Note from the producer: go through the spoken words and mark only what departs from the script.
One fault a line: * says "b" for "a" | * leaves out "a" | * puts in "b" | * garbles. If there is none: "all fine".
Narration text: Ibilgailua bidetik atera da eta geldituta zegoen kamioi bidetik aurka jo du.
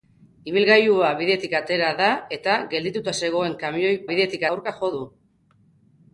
all fine